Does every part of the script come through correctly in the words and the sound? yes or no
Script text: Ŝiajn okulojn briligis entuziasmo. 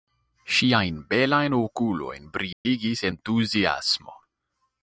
no